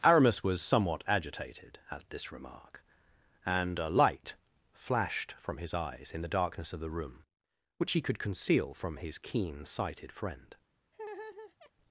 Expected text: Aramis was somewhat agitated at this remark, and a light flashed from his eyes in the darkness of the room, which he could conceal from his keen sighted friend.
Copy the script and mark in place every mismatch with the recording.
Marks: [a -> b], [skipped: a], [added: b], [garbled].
Aramis was somewhat agitated at this remark, and a light flashed from his eyes in the darkness of the room, which he could conceal from his keen sighted friend.